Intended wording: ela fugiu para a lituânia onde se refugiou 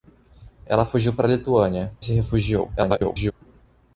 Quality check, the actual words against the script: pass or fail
fail